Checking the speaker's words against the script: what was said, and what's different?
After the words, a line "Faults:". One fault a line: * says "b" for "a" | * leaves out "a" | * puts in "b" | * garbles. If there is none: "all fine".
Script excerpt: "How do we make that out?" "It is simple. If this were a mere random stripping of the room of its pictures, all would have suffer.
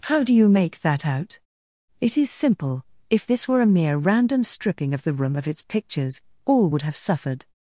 "How do you make that out?" "It is simple. If this were a mere random stripping of the room of its pictures, all would have suffered.
Faults:
* says "you" for "we"
* says "suffered" for "suffer"